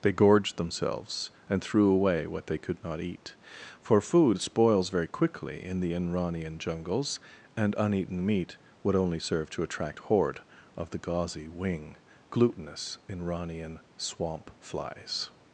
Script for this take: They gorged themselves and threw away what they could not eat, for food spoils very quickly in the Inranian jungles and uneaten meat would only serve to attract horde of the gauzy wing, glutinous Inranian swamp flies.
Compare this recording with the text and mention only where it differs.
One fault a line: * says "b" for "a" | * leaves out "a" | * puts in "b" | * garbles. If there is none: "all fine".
all fine